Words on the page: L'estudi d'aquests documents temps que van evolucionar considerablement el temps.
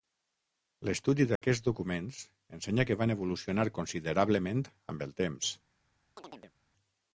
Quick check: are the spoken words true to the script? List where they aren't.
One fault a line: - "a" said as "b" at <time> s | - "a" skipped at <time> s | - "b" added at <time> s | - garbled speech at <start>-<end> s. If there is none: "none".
- "temps" said as "ensenya" at 2.6 s
- "amb" added at 5.0 s